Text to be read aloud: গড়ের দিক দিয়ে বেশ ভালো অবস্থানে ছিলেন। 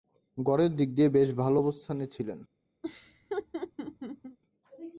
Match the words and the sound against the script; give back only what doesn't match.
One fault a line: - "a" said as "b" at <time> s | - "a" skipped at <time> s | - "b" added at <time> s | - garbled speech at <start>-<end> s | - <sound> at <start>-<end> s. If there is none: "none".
- laugh at 2.8-4.4 s